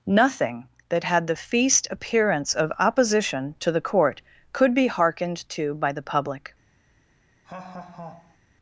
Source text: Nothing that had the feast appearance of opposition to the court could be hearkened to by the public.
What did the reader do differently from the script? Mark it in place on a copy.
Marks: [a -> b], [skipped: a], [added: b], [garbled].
Nothing that had the feast appearance of opposition to the court could be hearkened to by the public.